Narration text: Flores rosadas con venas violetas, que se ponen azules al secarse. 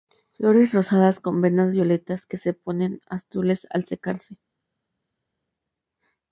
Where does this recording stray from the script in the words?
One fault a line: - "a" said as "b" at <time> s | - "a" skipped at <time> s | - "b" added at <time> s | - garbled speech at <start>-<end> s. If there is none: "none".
none